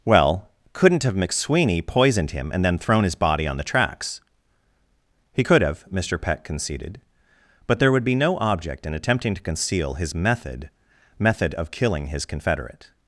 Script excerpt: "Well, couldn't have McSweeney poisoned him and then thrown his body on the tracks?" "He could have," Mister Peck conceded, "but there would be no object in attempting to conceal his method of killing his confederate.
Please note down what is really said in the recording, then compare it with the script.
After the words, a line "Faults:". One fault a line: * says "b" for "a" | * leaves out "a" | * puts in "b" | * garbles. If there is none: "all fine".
"Well, couldn't have McSweeney poisoned him and then thrown his body on the tracks?" "He could have," Mister Peck conceded, "but there would be no object in attempting to conceal his method method of killing his confederate.
Faults:
* puts in "method"